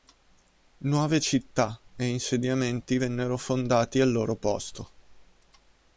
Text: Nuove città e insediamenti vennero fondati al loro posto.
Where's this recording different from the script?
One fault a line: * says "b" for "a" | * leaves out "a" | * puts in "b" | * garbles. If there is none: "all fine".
all fine